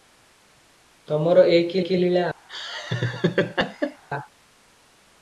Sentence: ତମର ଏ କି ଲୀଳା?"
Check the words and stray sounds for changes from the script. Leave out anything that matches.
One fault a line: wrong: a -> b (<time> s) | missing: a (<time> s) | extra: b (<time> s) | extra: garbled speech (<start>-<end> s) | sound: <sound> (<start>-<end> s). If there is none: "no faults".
extra: କି (1.8 s)
sound: laugh (2.5-4.0 s)